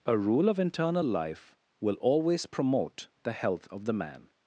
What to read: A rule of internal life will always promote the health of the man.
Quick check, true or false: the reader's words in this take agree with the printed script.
true